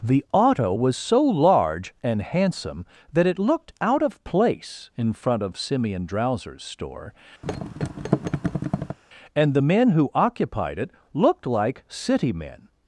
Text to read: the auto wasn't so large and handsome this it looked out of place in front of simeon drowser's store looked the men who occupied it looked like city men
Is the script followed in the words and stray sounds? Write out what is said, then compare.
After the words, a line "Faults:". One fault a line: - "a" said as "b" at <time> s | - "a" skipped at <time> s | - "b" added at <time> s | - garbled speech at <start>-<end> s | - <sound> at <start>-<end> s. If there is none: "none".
the auto was so large and handsome that it looked out of place in front of simeon drowser's store and the men who occupied it looked like city men
Faults:
- "wasn't" said as "was" at 0.7 s
- "this" said as "that" at 3.1 s
- thud at 7.4-9.0 s
- "looked" said as "and" at 9.3 s